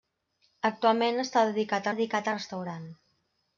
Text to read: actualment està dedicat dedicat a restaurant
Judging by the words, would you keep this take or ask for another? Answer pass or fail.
pass